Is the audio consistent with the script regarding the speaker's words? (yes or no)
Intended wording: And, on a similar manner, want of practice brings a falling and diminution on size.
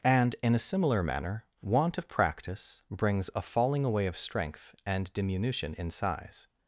no